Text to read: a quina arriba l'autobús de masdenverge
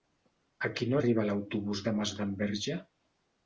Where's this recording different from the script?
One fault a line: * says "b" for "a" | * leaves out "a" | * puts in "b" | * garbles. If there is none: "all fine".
all fine